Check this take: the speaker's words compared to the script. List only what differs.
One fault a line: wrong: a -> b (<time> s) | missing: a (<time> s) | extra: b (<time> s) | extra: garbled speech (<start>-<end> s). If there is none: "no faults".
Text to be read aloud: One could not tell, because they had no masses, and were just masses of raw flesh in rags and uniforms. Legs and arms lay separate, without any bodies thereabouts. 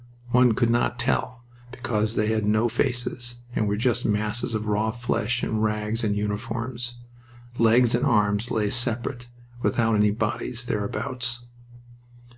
wrong: masses -> faces (2.7 s)